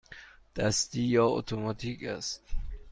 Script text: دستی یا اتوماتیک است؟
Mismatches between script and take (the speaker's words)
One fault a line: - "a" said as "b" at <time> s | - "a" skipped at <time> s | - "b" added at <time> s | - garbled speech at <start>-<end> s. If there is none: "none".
none